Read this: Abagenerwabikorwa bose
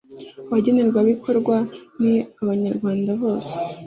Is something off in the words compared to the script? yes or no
yes